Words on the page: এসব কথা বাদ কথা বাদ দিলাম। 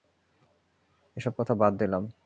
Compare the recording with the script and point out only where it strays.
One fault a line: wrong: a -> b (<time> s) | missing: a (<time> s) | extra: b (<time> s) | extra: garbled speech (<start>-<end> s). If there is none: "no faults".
missing: কথা বাদ (1.7 s)